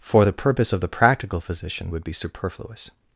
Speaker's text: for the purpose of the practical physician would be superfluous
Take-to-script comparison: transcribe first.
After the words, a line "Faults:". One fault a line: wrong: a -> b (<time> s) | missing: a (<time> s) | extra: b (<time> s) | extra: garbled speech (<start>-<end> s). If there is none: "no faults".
for the purpose of the practical physician would be superfluous
Faults:
no faults